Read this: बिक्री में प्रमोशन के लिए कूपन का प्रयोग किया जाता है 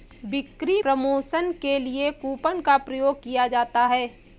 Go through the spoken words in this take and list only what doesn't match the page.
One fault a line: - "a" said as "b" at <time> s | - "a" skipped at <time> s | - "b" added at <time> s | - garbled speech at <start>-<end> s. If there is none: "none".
- "में" skipped at 0.8 s